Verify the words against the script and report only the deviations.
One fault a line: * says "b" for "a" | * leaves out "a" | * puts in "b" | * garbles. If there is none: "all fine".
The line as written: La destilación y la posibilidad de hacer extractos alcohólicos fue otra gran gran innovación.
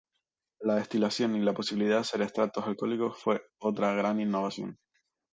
* leaves out "gran"